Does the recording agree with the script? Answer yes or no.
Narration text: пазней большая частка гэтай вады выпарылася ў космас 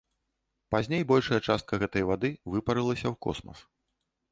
yes